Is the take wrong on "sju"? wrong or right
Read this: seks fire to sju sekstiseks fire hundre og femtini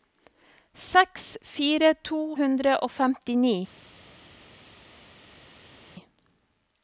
wrong